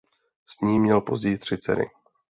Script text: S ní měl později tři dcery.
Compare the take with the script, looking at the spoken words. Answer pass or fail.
pass